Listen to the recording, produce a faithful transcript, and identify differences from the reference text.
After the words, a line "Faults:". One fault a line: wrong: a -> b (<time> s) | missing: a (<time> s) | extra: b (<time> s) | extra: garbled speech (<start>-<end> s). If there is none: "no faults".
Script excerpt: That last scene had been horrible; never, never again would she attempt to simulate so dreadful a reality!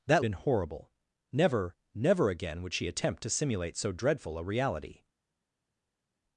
That been horrible; never, never again would she attempt to simulate so dreadful a reality!
Faults:
missing: last scene had (0.2 s)